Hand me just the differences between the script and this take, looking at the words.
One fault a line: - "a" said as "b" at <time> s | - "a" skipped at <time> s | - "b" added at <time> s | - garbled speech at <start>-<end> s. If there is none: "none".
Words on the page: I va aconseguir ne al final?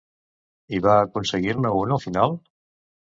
- "un" added at 1.8 s